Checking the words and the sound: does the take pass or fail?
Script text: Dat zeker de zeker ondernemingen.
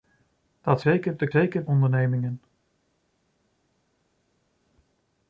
pass